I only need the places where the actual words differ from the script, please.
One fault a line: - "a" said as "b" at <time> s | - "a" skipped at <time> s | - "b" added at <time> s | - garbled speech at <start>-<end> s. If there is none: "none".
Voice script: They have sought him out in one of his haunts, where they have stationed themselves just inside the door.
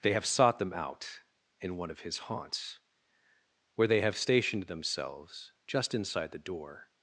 - "him" said as "them" at 0.6 s